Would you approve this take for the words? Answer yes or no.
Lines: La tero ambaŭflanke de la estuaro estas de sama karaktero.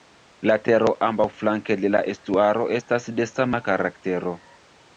yes